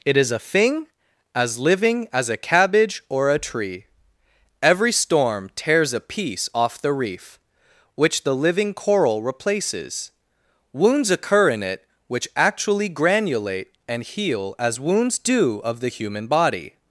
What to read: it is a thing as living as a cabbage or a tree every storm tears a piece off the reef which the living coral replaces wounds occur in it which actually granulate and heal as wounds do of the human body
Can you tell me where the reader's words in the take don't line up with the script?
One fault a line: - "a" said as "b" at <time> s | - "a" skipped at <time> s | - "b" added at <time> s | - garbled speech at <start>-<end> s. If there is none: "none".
none